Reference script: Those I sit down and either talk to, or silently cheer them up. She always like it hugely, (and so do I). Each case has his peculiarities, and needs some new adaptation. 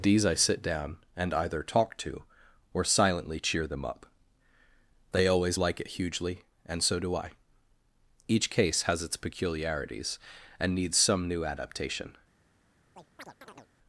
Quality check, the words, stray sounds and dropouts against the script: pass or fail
fail